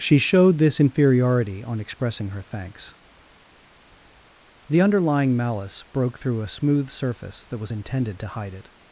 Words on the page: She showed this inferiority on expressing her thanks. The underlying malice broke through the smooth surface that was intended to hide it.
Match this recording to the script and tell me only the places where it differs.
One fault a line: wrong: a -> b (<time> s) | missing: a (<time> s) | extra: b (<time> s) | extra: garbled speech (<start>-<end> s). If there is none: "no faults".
wrong: the -> a (6.4 s)